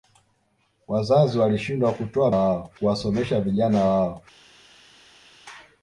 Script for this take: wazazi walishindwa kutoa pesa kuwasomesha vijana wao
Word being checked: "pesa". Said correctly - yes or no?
no